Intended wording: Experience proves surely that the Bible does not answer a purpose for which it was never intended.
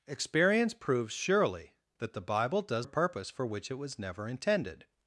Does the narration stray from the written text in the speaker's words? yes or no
yes